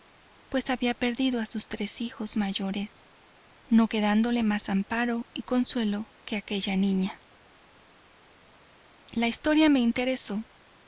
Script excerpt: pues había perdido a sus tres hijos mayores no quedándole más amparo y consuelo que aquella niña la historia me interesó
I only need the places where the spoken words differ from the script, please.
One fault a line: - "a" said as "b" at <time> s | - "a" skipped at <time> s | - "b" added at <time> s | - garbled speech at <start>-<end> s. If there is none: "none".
none